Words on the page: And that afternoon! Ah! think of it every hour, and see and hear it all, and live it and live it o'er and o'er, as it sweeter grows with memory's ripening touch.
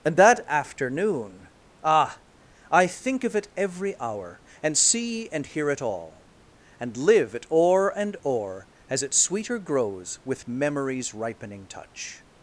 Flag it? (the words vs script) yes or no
yes